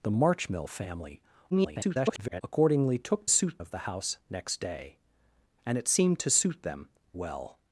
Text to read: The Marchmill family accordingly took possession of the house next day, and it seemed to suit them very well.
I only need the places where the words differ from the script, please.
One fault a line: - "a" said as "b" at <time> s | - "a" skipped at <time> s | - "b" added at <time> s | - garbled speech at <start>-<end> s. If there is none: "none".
- garbled speech at 1.5-2.4 s
- "possession" said as "suit" at 3.3 s
- "very" skipped at 6.9 s